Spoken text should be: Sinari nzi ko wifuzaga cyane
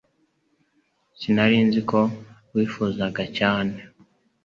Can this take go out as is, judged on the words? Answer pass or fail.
pass